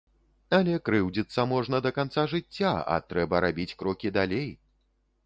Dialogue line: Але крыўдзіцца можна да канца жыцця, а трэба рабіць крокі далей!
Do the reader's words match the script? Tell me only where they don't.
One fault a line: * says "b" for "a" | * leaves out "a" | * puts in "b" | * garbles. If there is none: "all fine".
all fine